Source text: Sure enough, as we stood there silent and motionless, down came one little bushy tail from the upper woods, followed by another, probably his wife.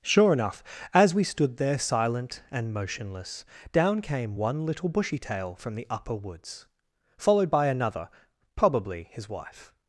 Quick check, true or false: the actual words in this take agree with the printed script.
true